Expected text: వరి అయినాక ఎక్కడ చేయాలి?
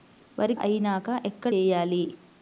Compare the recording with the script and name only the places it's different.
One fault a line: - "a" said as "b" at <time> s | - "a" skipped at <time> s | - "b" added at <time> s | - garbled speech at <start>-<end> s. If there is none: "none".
none